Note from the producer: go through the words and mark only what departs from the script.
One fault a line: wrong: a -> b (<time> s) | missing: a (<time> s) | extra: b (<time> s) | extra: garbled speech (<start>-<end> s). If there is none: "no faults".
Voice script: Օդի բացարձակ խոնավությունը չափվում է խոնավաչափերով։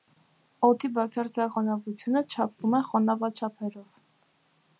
no faults